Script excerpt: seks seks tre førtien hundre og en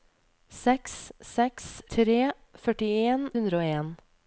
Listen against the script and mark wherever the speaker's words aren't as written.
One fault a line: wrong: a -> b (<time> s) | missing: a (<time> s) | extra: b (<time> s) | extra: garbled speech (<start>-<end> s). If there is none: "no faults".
no faults